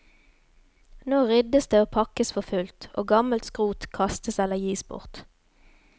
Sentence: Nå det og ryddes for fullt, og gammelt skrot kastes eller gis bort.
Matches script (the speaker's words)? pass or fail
fail